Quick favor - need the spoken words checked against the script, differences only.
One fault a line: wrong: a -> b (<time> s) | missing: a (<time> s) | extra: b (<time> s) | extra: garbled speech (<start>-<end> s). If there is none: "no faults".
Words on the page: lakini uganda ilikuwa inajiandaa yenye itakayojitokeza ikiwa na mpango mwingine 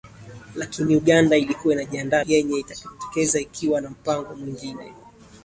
no faults